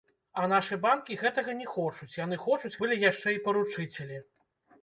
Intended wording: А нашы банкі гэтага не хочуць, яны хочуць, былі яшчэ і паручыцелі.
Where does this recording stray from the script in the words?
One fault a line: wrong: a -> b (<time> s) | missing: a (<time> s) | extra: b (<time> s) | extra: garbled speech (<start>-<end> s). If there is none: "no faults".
no faults